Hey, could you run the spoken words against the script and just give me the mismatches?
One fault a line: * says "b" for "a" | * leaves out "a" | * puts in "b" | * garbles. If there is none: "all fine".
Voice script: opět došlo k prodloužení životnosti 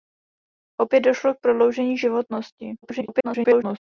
* garbles